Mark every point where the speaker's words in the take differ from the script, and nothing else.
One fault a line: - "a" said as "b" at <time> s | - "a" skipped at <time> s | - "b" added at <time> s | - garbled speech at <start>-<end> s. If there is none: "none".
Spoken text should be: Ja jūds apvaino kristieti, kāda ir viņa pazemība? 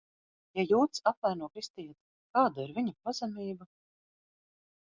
none